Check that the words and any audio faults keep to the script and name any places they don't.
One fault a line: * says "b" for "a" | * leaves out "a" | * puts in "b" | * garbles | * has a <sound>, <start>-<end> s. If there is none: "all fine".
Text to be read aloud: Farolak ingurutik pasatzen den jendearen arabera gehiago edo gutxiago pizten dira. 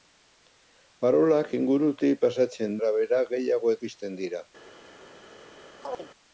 * leaves out "den jendearen"
* leaves out "edo gutxiago"
* has a chirp, 5.8-6.1 s